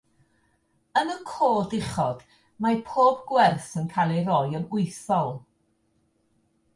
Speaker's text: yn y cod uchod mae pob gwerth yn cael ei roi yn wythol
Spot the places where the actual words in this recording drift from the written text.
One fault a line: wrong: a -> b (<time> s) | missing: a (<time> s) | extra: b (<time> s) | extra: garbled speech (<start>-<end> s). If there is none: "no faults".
no faults